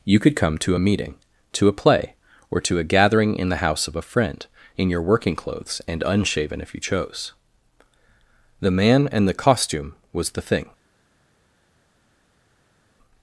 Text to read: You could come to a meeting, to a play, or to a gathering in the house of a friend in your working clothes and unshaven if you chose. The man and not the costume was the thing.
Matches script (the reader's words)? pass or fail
fail